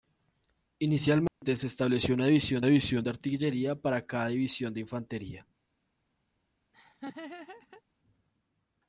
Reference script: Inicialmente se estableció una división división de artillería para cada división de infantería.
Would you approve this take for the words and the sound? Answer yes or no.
no